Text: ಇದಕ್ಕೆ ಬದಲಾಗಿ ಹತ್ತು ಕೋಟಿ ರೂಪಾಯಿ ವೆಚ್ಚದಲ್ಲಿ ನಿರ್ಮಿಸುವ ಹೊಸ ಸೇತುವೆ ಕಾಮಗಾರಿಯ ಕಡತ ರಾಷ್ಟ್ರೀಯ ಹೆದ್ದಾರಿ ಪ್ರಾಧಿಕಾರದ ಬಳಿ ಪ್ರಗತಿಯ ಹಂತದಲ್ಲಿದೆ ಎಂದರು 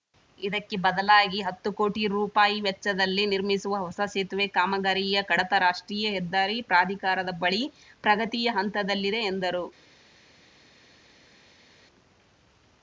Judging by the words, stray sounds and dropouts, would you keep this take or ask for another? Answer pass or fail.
pass